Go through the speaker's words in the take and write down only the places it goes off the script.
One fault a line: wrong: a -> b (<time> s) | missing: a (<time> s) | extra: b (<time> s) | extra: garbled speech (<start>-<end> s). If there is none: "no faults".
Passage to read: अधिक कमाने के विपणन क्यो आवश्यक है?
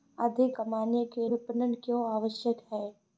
no faults